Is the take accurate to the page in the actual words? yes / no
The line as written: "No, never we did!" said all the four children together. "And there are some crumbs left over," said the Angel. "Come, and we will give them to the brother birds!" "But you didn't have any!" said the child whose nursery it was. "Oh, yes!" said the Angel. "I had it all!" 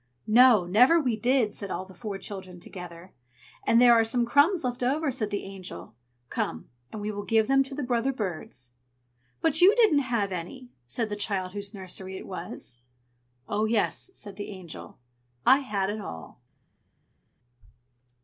yes